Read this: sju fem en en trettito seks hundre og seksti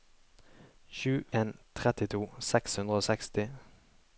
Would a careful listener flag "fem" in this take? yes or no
yes